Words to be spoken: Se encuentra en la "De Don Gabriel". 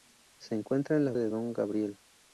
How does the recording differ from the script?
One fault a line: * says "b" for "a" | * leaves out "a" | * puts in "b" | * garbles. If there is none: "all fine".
all fine